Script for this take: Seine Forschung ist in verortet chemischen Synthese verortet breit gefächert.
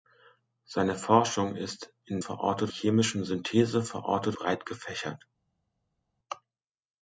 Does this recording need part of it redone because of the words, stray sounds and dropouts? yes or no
no